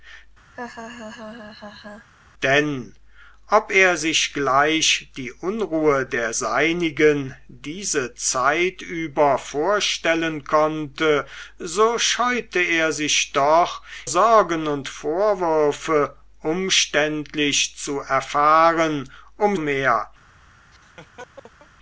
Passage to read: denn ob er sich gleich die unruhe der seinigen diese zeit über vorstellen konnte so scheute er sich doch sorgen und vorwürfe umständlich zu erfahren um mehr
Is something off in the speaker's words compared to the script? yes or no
no